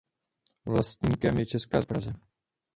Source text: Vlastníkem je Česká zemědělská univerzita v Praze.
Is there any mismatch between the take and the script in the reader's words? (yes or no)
yes